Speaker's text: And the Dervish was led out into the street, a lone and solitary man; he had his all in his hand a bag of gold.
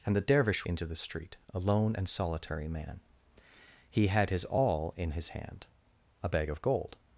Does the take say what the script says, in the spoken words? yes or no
no